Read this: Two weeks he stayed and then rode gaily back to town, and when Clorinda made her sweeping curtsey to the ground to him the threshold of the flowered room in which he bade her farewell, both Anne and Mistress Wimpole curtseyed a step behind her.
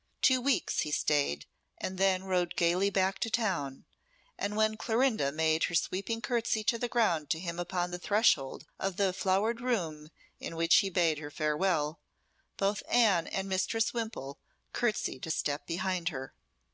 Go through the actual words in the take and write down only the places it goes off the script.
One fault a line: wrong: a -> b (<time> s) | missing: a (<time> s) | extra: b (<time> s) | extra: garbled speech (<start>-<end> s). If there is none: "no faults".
extra: upon (7.6 s)